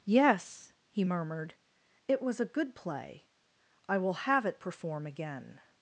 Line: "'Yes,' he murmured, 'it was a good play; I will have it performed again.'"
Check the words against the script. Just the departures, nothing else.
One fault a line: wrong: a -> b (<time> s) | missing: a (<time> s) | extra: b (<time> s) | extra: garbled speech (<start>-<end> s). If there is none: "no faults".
wrong: performed -> perform (4.6 s)